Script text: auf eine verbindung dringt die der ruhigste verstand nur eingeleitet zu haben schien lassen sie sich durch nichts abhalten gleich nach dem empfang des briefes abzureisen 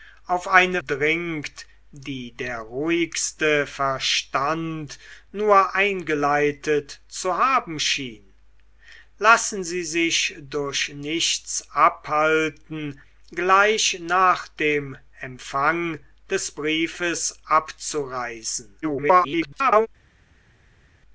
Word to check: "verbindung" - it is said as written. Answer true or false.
false